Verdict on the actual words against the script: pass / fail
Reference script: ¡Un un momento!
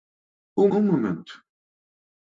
pass